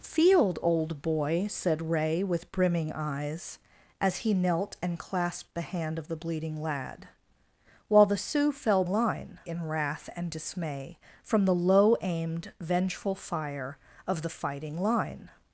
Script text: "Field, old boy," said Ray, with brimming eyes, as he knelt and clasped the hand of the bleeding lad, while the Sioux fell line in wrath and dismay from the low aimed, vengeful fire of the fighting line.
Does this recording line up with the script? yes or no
yes